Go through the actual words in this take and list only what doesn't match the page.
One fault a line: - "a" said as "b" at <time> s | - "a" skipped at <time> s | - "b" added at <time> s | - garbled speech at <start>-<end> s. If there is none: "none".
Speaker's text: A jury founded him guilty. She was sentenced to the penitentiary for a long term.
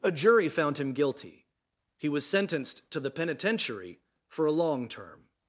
- "founded" said as "found" at 0.5 s
- "She" said as "He" at 2.0 s